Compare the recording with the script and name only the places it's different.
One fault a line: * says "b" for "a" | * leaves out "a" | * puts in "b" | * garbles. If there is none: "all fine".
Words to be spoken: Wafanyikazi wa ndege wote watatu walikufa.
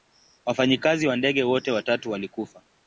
all fine